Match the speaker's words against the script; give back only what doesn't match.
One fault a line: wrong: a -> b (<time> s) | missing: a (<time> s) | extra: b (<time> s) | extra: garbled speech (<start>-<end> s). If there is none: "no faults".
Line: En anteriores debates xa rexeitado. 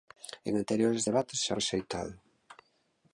no faults